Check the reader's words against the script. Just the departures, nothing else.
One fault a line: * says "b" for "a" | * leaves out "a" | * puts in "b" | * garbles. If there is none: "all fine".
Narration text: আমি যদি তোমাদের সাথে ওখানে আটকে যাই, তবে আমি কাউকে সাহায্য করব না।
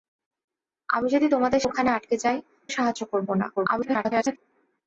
* leaves out "সাথে"
* leaves out "তবে আমি কাউকে"
* garbles